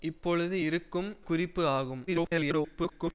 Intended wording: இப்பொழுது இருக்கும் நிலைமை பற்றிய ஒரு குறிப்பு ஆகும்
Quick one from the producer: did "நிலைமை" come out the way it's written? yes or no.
no